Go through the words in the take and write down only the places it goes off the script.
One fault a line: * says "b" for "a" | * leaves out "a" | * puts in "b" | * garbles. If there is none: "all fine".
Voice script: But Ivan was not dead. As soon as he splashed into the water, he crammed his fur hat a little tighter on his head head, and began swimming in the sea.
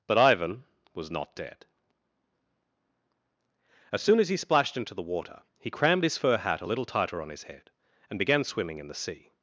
* leaves out "head"